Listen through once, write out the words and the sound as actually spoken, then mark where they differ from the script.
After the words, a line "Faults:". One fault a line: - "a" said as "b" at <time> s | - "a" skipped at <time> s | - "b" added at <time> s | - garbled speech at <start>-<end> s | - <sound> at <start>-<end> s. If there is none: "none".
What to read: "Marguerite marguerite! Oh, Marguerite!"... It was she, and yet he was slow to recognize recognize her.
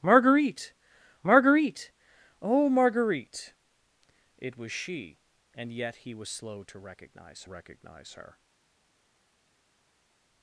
"Marguerite marguerite! Oh, Marguerite!"... It was she, and yet he was slow to recognize recognize her.
Faults:
none